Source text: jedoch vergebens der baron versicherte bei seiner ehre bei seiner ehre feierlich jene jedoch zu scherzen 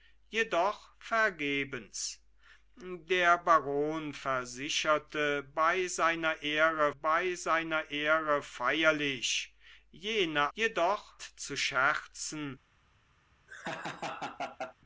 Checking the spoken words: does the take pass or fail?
pass